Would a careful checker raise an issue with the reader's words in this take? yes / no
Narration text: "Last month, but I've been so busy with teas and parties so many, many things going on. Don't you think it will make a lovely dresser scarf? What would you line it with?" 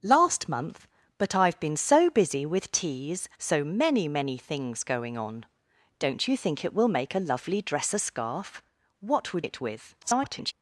yes